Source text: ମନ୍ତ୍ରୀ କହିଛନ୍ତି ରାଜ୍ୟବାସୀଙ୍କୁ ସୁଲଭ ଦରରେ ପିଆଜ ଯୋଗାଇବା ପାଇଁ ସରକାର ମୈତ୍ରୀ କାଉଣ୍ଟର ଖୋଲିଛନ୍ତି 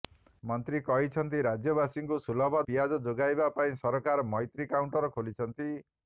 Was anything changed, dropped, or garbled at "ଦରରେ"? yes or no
yes